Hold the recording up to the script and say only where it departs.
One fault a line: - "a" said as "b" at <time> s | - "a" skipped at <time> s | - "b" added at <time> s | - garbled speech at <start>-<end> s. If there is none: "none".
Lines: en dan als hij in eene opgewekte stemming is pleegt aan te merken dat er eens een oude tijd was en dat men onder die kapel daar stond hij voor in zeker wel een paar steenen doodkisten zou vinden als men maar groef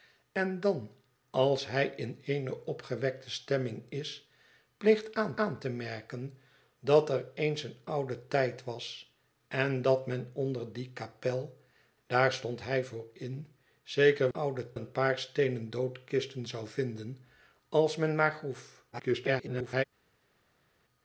- "aan" added at 5.4 s
- "wel" said as "oude" at 14.3 s
- garbled speech at 18.9-19.8 s